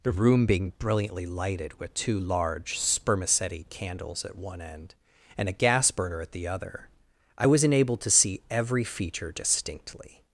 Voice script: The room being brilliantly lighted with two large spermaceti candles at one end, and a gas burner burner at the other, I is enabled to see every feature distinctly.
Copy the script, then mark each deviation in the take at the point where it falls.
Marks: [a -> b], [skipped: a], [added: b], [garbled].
The room being brilliantly lighted with two large spermaceti candles at one end, and a gas burner [skipped: burner] at the other, I [is -> was] enabled to see every feature distinctly.